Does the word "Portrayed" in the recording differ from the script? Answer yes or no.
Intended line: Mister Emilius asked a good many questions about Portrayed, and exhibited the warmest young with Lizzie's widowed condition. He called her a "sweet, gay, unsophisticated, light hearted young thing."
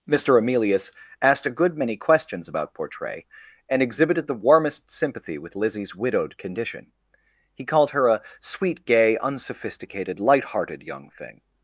yes